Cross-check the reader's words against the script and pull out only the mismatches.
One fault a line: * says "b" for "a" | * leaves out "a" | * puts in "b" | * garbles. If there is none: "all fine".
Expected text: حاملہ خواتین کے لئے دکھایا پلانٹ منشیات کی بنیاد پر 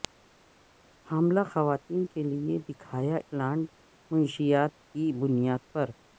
all fine